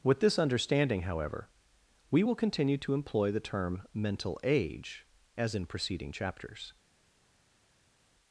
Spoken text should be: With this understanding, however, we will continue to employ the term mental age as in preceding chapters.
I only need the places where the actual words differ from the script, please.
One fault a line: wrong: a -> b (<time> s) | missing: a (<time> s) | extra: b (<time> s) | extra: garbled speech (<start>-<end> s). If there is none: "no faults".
no faults